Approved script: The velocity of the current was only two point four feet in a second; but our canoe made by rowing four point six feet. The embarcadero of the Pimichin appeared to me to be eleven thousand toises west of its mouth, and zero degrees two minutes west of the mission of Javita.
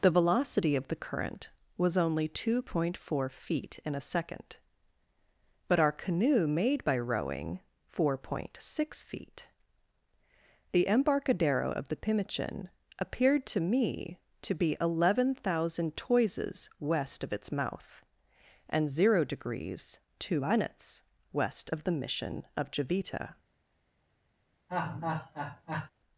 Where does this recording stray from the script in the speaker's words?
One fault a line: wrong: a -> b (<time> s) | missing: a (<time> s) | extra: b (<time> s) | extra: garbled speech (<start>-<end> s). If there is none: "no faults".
no faults